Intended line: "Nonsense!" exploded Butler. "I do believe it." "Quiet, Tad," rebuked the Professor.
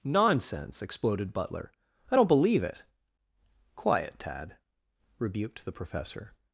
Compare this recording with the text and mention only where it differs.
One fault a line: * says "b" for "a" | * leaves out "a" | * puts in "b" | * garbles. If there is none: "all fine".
* says "don't" for "do"